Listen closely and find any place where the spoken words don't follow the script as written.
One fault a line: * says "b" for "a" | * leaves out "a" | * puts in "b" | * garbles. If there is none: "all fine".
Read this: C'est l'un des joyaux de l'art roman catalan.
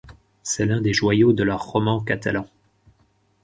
all fine